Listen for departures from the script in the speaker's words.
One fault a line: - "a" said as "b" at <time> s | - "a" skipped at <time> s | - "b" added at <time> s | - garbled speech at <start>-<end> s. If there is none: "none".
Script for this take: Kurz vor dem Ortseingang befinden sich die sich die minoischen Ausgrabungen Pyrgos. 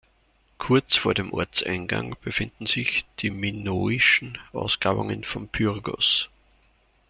- "sich die" skipped at 3.3 s
- "von" added at 5.2 s